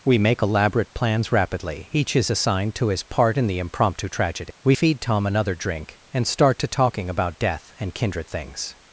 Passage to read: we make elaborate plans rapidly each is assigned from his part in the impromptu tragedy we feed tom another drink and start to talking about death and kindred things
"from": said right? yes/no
no